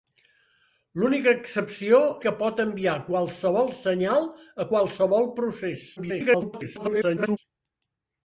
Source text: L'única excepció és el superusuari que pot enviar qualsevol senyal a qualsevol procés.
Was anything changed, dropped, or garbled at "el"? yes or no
yes